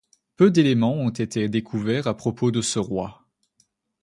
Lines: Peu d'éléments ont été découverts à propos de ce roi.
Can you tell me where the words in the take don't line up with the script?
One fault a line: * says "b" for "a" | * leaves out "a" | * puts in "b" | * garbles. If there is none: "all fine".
all fine